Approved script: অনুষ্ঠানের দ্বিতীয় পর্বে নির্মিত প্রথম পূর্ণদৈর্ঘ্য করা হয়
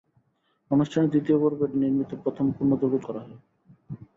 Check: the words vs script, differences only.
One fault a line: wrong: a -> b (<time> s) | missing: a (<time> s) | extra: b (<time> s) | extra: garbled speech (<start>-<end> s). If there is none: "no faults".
no faults